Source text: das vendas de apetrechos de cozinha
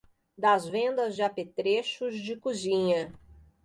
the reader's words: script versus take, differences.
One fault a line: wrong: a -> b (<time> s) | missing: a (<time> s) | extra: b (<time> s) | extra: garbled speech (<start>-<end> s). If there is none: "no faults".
no faults